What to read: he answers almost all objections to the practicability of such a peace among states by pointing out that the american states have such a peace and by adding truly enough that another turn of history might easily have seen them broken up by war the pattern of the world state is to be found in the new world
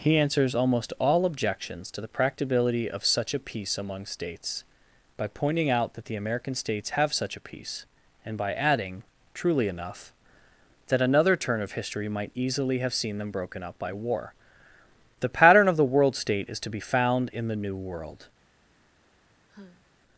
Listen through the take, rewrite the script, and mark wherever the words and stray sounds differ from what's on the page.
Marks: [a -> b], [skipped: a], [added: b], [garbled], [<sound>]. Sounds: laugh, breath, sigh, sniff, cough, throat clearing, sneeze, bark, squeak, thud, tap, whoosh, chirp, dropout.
he answers almost all objections to the practicability of such a peace among states by pointing out that the american states have such a peace and by adding truly enough that another turn of history might easily have seen them broken up by war the pattern of the world state is to be found in the new world [sigh]